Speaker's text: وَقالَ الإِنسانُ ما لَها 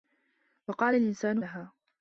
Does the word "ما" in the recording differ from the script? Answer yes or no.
yes